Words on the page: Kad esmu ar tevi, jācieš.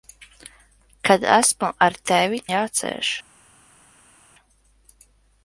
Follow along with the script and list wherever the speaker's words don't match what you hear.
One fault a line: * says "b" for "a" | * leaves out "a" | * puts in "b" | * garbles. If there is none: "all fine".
all fine